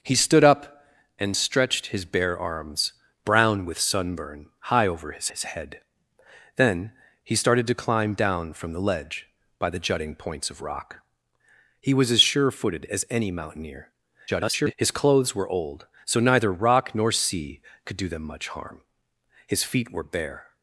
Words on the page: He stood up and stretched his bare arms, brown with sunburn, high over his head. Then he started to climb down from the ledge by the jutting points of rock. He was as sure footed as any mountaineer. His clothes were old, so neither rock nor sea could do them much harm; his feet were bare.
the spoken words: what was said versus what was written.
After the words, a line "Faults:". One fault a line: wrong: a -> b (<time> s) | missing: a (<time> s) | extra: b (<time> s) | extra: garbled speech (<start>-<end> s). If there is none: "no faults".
He stood up and stretched his bare arms, brown with sunburn, high over his his head. Then he started to climb down from the ledge by the jutting points of rock. He was as sure footed as any mountaineer. [garbled] His clothes were old, so neither rock nor sea could do them much harm; his feet were bare.
Faults:
extra: his (5.3 s)
extra: garbled speech (14.3-14.7 s)